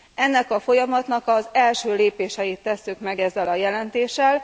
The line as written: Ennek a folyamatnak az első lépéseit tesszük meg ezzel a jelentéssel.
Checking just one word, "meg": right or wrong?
right